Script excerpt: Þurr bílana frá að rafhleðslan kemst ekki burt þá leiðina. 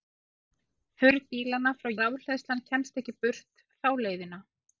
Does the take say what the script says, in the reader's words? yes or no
yes